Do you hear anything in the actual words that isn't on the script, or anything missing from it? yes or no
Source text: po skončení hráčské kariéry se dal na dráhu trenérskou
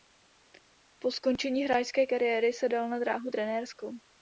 no